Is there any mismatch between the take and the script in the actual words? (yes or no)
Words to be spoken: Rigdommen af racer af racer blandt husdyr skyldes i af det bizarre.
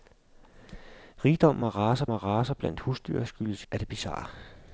no